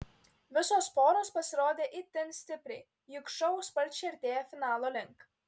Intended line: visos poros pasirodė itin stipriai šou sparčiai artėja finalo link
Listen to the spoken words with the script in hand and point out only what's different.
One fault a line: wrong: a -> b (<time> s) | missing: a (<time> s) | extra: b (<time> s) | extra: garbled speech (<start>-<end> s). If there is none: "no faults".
extra: juk (3.2 s)